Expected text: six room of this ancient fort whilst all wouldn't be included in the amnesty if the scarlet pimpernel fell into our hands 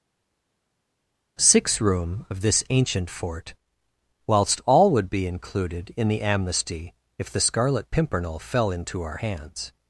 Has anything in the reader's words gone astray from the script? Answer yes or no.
yes